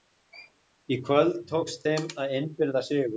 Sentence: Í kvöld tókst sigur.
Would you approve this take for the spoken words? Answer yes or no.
no